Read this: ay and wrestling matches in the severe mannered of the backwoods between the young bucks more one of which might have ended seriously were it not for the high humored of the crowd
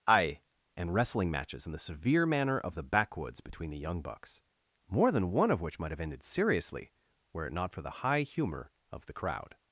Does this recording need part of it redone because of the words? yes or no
yes